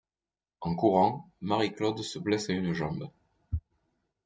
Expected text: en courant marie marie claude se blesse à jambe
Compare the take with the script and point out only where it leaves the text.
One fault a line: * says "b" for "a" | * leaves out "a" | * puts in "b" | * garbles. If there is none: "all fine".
* leaves out "marie"
* puts in "une"